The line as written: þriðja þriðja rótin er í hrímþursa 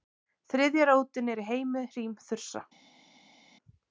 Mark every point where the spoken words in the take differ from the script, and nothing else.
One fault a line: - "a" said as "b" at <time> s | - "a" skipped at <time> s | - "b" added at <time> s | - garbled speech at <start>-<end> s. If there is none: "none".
- "þriðja" skipped at 0.9 s
- "heimi" added at 1.5 s